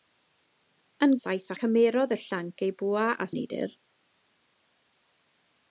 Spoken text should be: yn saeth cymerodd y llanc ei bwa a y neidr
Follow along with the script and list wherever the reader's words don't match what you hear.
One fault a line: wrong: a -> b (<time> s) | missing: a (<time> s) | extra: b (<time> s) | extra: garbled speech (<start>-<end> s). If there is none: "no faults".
no faults